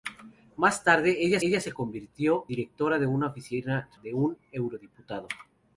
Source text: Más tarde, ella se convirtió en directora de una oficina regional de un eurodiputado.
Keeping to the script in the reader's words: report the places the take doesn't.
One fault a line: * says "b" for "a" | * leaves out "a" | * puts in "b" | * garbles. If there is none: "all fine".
* puts in "ella"
* leaves out "en"
* leaves out "regional"